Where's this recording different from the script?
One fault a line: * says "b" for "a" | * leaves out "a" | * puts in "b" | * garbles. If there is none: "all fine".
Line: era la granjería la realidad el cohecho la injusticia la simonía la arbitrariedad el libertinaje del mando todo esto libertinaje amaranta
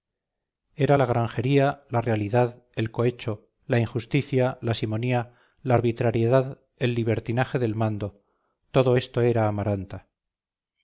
* says "era" for "libertinaje"